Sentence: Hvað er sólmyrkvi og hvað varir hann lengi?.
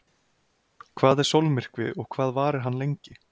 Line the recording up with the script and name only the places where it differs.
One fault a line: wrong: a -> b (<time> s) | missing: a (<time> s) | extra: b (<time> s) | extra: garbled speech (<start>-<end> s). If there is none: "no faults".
no faults